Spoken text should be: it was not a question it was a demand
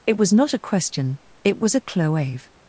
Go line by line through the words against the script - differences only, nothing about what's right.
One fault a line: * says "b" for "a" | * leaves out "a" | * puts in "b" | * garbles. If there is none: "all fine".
* says "cloave" for "demand"